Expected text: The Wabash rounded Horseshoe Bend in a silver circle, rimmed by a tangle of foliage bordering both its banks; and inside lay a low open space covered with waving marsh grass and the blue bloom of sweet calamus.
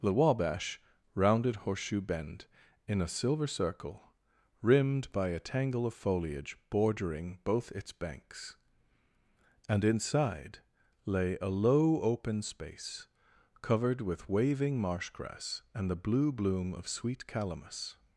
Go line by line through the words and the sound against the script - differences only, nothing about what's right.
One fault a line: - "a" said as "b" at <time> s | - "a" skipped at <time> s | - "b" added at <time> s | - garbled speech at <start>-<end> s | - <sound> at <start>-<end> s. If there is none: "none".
none